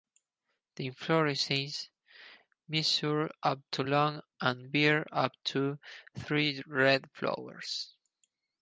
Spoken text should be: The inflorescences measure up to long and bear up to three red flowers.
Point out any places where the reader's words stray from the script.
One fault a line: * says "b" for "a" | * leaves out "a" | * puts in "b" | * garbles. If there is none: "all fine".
all fine